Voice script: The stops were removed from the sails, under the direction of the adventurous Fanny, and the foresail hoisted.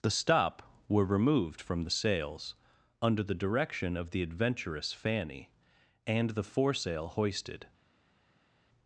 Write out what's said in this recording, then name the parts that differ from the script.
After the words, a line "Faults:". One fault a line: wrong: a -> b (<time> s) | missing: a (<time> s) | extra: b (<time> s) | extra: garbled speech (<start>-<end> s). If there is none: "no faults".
The stop were removed from the sails, under the direction of the adventurous Fanny, and the foresail hoisted.
Faults:
wrong: stops -> stop (0.1 s)